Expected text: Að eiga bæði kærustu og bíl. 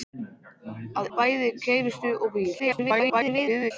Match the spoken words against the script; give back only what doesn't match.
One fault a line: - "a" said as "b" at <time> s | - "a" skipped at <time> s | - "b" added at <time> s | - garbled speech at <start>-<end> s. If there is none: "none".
- "eiga" skipped at 1.1 s
- garbled speech at 2.6-3.7 s